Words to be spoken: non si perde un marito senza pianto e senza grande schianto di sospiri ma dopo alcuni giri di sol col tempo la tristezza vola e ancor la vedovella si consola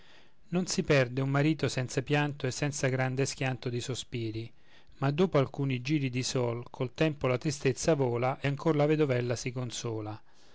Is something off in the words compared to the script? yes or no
no